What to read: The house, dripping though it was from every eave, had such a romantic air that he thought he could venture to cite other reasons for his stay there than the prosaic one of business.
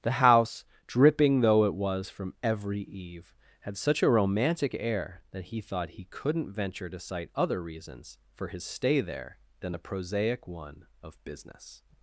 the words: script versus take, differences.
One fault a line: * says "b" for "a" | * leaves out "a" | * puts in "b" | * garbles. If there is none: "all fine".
* says "couldn't" for "could"